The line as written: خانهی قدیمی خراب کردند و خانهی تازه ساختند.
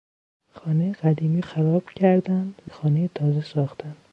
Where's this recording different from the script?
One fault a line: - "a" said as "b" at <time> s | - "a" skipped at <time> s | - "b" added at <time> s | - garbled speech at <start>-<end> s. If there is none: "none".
none